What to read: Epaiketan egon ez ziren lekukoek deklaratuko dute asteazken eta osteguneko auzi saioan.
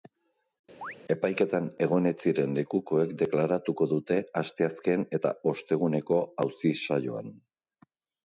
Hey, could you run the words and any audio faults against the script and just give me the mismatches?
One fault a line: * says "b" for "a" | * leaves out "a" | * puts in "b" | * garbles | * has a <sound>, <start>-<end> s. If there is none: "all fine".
* has a chirp, 0.8-1.0 s